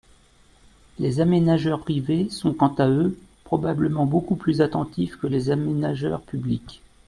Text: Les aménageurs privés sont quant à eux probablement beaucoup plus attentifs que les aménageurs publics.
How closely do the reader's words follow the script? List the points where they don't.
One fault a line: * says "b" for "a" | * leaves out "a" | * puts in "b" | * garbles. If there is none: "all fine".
all fine